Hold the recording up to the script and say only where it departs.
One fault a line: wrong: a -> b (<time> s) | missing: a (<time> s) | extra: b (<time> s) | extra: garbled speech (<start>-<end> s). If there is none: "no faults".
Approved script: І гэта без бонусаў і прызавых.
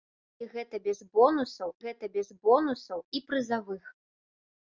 extra: гэта без бонусаў (1.8 s)